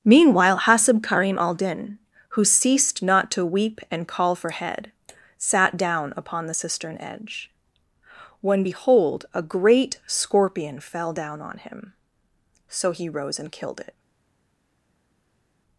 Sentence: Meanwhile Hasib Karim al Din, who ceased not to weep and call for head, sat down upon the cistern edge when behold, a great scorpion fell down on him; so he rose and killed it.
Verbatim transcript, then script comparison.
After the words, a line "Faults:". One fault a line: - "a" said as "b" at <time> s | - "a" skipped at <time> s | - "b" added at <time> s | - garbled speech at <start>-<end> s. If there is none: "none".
Meanwhile Hasib Karim al Din, who ceased not to weep and call for head, sat down upon the cistern edge when behold, a great scorpion fell down on him; so he rose and killed it.
Faults:
none